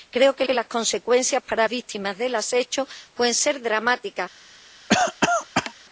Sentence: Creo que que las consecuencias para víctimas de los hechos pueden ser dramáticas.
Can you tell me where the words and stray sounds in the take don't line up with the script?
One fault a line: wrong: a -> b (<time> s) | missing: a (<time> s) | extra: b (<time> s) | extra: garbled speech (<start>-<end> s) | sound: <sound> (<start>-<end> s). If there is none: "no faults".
sound: cough (4.9-5.7 s)